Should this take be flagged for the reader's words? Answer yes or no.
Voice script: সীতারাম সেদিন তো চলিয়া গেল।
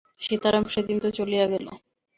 no